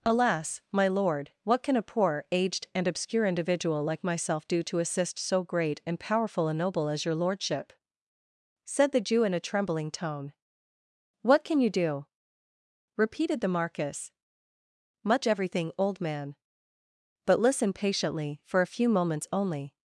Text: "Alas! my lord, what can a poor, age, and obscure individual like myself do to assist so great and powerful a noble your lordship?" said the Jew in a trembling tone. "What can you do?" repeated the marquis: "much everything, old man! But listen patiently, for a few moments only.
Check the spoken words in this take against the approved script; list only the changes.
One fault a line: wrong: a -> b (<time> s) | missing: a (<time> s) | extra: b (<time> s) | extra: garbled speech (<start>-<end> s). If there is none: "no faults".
wrong: age -> aged (2.3 s)
extra: as (6.9 s)